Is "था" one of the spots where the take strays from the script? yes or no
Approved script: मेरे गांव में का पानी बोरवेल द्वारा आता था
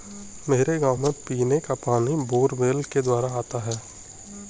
yes